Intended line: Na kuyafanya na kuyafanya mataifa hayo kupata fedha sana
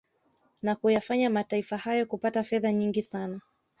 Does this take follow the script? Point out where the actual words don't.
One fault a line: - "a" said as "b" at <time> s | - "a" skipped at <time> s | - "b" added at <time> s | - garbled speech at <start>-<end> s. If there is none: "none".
- "na kuyafanya" skipped at 1.3 s
- "nyingi" added at 2.7 s